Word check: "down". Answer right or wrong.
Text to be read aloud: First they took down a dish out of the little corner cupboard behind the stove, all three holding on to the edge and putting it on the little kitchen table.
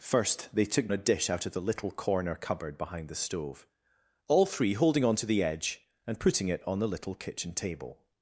wrong